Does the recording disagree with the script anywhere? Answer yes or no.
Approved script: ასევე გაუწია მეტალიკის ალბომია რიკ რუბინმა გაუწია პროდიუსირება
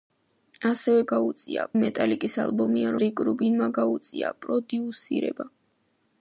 no